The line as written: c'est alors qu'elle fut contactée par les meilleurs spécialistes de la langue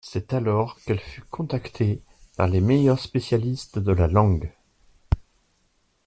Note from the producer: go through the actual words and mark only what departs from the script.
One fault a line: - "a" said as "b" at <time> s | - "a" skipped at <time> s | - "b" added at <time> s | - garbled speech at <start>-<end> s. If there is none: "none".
none